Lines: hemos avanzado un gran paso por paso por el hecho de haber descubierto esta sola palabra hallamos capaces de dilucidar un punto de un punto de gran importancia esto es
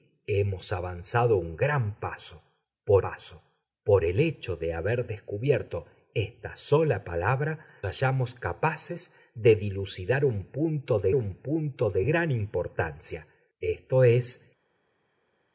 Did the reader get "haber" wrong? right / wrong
right